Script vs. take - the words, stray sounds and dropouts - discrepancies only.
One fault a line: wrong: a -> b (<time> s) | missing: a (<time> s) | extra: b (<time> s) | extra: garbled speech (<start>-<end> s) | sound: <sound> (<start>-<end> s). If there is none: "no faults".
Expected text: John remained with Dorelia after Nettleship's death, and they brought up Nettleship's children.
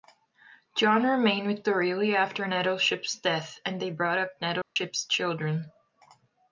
sound: dropout (4.6-4.8 s)